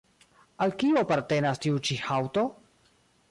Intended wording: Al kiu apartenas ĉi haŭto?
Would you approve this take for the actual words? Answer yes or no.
no